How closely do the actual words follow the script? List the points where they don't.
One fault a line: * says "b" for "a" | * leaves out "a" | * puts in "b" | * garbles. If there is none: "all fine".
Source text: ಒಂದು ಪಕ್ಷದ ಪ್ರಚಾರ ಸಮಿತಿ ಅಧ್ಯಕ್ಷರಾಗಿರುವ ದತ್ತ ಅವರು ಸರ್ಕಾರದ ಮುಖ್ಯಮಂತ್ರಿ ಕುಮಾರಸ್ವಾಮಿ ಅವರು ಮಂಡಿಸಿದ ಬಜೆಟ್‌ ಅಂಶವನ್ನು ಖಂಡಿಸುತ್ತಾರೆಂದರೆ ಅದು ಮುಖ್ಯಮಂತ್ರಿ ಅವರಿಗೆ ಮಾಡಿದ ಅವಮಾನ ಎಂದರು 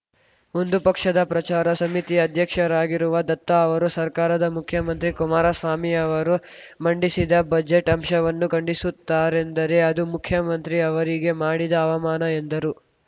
all fine